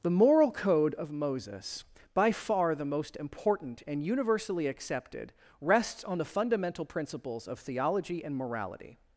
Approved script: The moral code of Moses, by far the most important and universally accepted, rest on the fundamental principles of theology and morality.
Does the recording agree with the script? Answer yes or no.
no